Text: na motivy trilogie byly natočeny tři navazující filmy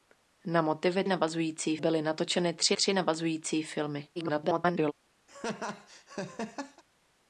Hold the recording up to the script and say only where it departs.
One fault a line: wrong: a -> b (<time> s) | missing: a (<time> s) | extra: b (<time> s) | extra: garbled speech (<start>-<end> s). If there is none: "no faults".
wrong: trilogie -> navazující (1.1 s)
extra: tři (2.7 s)
extra: garbled speech (4.2-4.9 s)